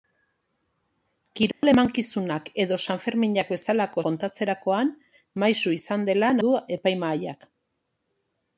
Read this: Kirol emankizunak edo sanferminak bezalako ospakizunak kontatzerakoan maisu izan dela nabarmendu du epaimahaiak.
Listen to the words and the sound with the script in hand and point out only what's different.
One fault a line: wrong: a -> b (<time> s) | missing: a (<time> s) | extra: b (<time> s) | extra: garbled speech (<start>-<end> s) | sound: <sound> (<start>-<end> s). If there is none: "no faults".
sound: dropout (1.5-1.6 s)
missing: ospakizunak (4.1 s)
missing: nabarmendu (6.3 s)